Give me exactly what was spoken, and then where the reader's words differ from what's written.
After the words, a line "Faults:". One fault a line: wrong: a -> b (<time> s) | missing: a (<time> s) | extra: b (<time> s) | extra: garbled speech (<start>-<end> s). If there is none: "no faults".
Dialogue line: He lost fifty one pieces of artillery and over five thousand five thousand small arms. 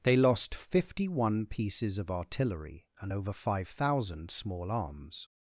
They lost fifty one pieces of artillery and over five thousand small arms.
Faults:
wrong: He -> They (0.0 s)
missing: five thousand (4.3 s)